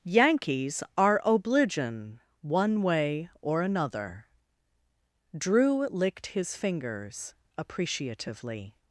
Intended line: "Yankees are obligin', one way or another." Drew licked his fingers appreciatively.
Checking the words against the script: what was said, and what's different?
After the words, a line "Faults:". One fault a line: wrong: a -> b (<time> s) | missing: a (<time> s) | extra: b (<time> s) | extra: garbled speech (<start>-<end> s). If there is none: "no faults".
"Yankees are obligin', one way or another." Drew licked his fingers appreciatively.
Faults:
no faults